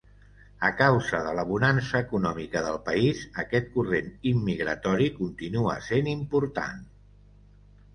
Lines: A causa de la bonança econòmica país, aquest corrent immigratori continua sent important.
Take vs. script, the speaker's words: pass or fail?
fail